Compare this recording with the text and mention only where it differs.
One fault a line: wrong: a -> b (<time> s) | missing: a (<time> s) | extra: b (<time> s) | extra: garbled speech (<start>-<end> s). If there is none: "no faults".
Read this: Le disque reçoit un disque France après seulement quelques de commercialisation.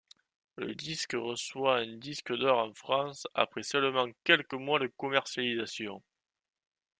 extra: d'or en (2.4 s)
extra: mois (4.5 s)